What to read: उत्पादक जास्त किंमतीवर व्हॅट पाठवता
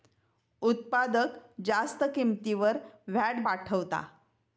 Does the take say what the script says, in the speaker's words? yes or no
yes